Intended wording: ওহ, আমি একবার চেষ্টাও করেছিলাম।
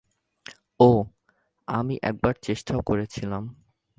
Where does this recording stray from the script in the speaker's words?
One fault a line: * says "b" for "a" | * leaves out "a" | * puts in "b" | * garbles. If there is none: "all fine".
all fine